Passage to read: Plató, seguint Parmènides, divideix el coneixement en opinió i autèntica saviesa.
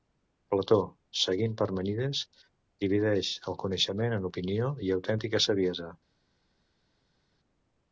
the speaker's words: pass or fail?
pass